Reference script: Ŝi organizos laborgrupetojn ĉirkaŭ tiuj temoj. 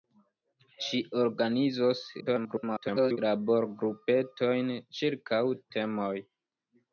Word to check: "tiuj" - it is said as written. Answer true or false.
false